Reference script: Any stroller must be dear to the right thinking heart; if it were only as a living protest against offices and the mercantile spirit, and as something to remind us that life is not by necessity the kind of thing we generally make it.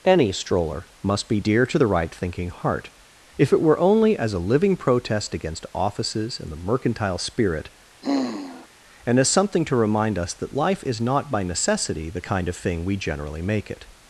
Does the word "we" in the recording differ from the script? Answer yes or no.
no